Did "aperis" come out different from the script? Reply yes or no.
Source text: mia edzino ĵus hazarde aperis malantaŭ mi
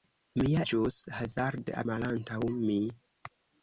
yes